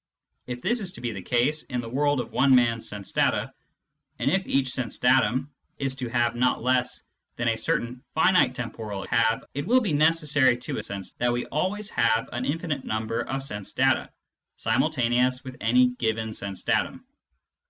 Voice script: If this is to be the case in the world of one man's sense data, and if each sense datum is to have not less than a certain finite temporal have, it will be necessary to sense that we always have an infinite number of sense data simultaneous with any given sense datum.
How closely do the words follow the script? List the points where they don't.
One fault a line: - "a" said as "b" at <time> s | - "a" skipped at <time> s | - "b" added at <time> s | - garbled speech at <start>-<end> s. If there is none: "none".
none